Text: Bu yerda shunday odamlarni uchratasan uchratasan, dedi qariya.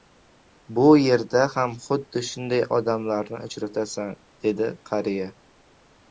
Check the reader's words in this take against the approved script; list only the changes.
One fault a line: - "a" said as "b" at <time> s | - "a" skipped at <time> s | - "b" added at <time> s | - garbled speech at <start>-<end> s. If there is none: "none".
- "ham xuddi" added at 1.6 s
- "uchratasan" skipped at 4.1 s